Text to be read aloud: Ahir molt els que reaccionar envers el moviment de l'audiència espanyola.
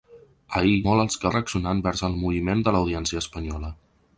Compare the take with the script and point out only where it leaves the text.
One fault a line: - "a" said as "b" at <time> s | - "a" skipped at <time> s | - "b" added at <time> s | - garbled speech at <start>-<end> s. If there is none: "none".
none